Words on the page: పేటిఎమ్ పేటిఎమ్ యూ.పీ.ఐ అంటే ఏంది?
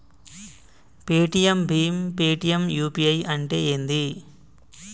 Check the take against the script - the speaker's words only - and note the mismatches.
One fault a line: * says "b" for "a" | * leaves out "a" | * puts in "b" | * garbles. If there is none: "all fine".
* puts in "భీమ్"